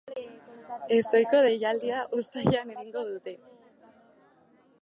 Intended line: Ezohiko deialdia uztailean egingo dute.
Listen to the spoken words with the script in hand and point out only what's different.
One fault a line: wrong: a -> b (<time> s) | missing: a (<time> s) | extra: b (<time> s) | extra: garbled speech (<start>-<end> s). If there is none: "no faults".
no faults